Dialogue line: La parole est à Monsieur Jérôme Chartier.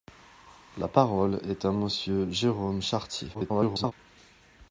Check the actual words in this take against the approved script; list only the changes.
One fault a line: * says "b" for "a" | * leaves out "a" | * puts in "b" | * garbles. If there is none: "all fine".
* garbles